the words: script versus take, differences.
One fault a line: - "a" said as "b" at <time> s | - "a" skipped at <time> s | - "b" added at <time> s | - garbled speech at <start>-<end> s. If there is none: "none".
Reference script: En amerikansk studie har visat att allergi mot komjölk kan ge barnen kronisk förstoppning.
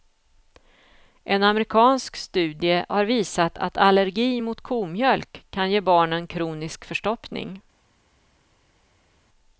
none